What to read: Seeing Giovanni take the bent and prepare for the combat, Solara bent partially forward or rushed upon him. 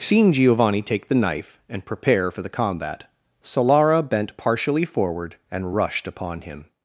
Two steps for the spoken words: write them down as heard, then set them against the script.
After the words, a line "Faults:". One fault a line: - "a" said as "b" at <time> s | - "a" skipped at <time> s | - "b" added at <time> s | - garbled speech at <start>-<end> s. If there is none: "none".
Seeing Giovanni take the knife and prepare for the combat, Solara bent partially forward and rushed upon him.
Faults:
- "bent" said as "knife" at 1.2 s
- "or" said as "and" at 5.5 s